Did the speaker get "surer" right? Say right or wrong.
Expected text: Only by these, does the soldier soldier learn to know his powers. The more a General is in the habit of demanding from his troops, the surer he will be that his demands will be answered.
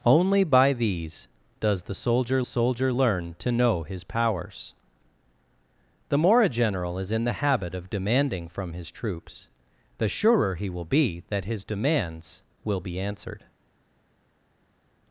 right